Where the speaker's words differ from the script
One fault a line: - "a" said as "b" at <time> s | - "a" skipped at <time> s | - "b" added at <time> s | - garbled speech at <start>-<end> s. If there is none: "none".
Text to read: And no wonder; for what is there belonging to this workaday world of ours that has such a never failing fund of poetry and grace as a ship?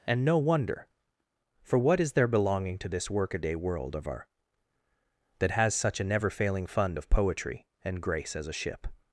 - "ours" said as "our" at 4.1 s